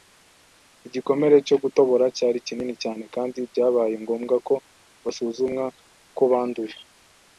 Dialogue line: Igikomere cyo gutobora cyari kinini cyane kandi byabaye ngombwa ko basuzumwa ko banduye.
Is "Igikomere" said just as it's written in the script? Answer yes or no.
yes